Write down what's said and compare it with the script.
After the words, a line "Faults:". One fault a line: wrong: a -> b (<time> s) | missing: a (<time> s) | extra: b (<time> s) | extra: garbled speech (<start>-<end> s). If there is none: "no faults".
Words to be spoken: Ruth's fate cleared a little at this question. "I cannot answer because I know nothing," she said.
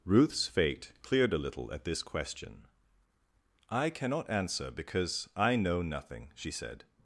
Ruth's fate cleared a little at this question. "I cannot answer because I know nothing," she said.
Faults:
no faults